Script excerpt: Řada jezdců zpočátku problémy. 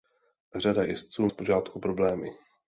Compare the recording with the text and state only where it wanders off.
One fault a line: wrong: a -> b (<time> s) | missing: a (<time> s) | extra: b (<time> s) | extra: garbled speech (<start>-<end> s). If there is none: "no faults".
no faults